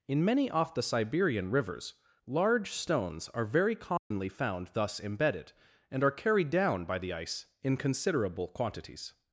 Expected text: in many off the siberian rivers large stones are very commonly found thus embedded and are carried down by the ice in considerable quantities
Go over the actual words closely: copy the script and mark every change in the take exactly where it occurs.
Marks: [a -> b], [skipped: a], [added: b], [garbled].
in many off the siberian rivers large stones are very commonly found thus embedded and are carried down by the ice in considerable quantities